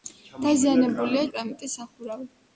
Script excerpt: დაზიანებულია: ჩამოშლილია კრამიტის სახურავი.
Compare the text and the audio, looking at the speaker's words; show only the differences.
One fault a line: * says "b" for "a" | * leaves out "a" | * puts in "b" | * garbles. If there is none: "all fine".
* leaves out "ჩამოშლილია"